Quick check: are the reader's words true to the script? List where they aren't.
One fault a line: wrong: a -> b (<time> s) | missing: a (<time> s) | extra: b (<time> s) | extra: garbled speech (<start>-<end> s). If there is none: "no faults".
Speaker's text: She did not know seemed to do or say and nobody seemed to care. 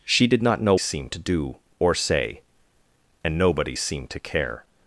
no faults